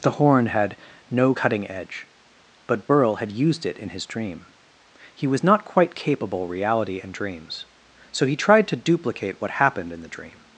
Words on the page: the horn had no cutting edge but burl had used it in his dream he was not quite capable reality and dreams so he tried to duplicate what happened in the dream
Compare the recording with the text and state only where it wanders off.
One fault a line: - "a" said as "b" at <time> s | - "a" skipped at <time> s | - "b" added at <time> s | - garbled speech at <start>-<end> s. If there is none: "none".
none